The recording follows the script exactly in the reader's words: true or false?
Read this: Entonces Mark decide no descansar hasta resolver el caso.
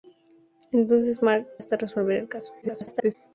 false